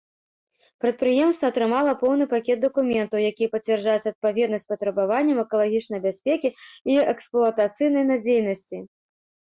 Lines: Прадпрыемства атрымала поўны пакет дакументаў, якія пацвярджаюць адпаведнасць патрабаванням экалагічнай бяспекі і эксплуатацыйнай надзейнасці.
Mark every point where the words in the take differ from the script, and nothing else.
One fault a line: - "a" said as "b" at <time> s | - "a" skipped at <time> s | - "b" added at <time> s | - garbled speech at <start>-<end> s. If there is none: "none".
none